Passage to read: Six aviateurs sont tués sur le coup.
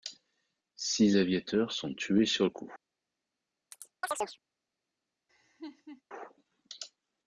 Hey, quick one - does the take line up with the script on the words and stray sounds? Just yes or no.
no